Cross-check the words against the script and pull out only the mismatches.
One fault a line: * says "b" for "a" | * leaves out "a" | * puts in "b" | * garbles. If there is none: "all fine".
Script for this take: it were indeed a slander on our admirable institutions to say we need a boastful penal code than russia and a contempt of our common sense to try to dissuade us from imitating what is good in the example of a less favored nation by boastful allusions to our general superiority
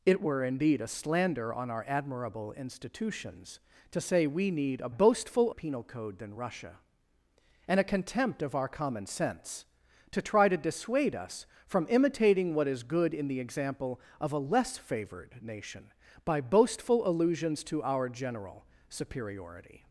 all fine